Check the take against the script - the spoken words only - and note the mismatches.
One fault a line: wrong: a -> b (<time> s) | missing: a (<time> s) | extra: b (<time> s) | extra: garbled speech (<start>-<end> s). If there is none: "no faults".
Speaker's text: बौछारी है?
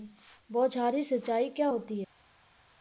extra: सिंचाई क्या होती (1.0 s)